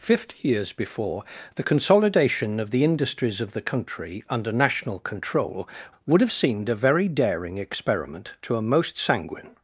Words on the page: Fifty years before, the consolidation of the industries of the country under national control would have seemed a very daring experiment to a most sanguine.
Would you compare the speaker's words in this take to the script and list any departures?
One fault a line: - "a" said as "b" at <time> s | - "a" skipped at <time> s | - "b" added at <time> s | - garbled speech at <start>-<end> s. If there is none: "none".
none